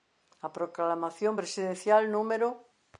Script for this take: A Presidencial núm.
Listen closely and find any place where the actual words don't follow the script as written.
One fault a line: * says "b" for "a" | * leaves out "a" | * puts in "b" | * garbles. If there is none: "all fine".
* puts in "Proclamación"